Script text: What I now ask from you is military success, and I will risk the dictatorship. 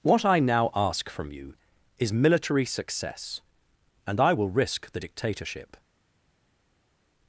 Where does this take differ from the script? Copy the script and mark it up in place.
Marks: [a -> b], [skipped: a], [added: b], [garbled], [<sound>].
What I now ask from you is military success, and I will risk the dictatorship.